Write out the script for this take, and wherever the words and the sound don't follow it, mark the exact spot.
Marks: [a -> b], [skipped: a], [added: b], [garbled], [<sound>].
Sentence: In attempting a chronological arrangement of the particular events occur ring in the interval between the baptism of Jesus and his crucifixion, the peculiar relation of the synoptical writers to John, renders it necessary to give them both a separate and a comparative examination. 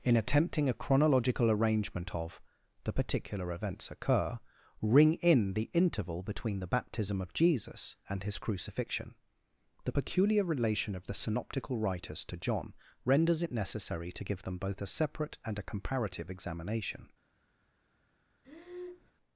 In attempting a chronological arrangement of the particular events occur ring in the interval between the baptism of Jesus and his crucifixion, the peculiar relation of the synoptical writers to John, renders it necessary to give them both a separate and a comparative examination. [breath]